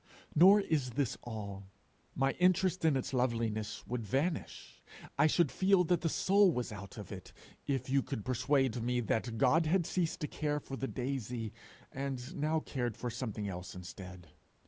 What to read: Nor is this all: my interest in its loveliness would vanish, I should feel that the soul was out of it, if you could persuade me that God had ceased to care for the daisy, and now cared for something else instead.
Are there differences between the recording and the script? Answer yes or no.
no